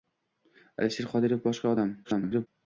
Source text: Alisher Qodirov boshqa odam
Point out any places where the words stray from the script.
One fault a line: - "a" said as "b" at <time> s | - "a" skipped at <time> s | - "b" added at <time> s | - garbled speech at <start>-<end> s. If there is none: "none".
- garbled speech at 2.0-2.5 s